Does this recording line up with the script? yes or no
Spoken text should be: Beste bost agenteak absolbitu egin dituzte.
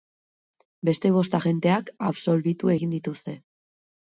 yes